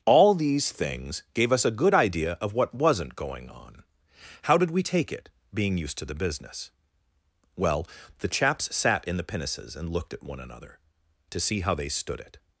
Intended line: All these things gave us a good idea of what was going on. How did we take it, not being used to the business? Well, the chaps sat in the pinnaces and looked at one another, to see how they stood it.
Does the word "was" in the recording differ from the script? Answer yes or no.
yes